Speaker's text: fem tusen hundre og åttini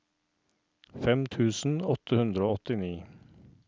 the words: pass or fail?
fail